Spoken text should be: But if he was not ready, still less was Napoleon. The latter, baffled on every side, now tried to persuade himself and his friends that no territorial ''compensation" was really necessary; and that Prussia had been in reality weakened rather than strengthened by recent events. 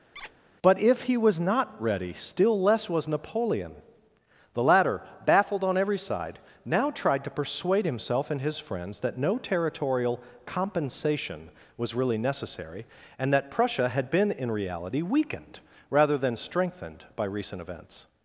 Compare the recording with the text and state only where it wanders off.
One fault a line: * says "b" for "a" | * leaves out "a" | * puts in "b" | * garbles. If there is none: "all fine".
all fine